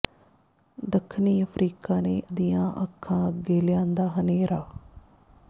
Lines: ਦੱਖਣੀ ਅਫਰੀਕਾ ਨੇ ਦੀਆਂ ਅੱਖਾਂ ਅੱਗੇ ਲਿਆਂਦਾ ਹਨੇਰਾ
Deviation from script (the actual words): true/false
false